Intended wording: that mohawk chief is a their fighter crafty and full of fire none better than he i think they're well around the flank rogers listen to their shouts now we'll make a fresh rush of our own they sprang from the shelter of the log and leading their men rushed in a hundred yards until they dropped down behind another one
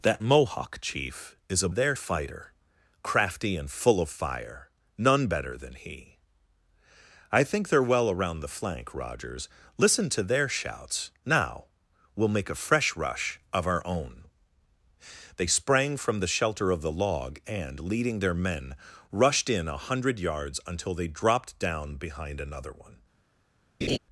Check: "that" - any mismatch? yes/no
no